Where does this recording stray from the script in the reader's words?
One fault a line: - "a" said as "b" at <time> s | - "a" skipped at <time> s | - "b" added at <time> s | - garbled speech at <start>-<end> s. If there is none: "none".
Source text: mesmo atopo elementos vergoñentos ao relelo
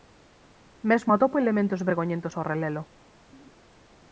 none